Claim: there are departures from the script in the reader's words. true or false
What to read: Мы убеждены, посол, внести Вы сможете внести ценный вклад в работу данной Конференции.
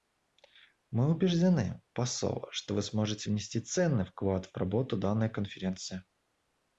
true